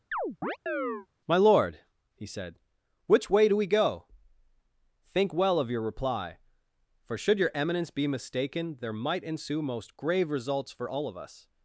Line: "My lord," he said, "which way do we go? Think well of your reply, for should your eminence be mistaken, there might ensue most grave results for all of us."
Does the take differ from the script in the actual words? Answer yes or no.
no